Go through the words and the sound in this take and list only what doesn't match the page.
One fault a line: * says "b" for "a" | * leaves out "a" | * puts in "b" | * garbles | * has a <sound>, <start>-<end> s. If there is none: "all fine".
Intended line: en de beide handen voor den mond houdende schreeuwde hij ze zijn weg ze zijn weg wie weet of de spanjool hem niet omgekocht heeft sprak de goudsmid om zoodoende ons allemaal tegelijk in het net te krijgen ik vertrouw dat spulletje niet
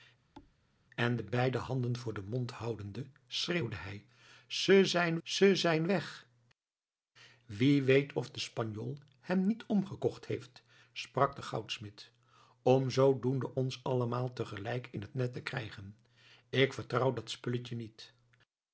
* has a thud, 0.3-0.5 s
* leaves out "weg"